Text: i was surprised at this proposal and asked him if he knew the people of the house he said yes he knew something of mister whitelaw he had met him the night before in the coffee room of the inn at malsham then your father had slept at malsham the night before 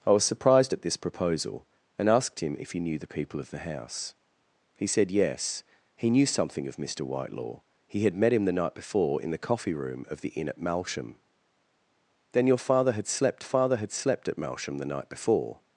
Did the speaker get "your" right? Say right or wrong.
right